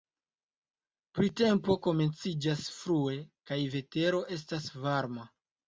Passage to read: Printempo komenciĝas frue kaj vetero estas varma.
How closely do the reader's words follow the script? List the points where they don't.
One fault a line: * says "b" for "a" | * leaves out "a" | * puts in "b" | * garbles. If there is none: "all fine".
all fine